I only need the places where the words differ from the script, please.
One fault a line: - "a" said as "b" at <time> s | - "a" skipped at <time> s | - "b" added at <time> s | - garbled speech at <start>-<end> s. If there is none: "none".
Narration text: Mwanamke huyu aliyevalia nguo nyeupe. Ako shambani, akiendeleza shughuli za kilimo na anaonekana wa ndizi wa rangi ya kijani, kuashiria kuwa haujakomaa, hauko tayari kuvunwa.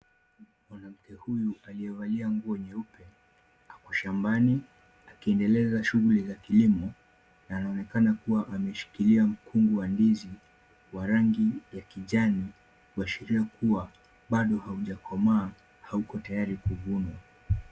- "kuwa ameshikilia mkungu" added at 8.1 s
- "bado" added at 14.3 s